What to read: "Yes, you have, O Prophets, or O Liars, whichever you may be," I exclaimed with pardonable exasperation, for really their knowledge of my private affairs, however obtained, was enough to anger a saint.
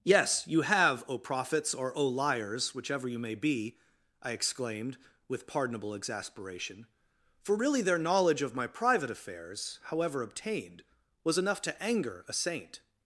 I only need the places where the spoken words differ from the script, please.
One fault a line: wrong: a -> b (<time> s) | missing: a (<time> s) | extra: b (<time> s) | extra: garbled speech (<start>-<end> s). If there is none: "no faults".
no faults